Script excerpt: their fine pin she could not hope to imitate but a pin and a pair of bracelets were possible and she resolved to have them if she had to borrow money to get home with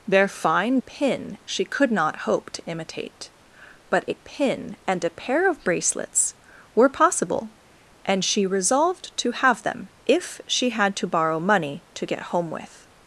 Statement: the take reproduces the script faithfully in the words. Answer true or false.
true